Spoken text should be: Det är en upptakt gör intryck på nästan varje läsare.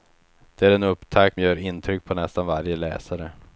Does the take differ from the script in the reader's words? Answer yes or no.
no